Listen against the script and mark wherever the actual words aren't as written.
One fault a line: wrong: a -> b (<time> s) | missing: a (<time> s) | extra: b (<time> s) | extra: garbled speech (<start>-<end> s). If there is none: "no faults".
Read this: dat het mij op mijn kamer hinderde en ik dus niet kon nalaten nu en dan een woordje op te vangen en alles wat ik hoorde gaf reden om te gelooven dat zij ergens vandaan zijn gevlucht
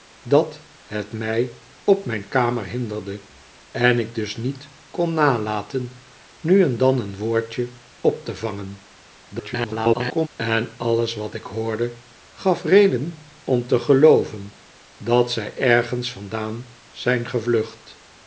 extra: garbled speech (9.3-10.3 s)